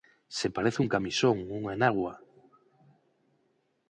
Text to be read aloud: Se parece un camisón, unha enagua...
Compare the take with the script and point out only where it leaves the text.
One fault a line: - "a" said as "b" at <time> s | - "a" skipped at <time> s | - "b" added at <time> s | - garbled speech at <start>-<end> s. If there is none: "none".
none